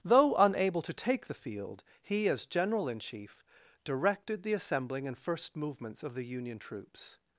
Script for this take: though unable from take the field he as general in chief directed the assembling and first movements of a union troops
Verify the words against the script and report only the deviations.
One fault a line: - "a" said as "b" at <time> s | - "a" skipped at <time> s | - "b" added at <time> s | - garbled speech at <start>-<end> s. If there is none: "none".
- "from" said as "to" at 0.8 s
- "a" said as "the" at 6.1 s